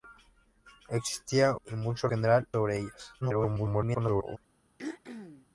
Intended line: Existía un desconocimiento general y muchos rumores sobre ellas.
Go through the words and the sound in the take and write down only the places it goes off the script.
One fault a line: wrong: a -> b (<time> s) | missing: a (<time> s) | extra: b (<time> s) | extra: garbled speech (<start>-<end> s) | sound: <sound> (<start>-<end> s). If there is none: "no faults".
missing: un desconocimiento general (1.6 s)
wrong: rumores -> general (2.1 s)
extra: garbled speech (3.2-4.4 s)
sound: throat clearing (4.8-5.5 s)